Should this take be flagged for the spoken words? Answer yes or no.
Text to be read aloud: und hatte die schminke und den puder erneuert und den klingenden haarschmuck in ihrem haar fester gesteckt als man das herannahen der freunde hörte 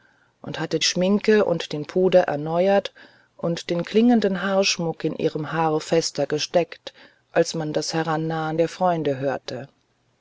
yes